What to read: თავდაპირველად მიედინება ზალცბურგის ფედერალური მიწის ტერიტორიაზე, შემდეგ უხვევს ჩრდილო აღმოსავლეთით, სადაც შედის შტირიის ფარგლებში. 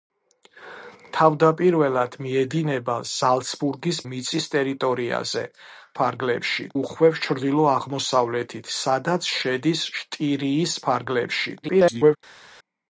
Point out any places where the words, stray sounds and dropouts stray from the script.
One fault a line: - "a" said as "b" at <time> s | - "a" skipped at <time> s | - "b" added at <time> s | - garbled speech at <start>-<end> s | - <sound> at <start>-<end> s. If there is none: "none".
- "ფედერალური" skipped at 4.0 s
- "შემდეგ" said as "ფარგლებში" at 6.0 s
- garbled speech at 11.6-12.2 s